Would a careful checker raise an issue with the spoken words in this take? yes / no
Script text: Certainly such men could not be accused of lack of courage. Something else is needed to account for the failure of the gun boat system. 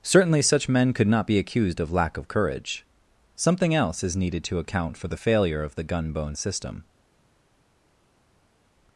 yes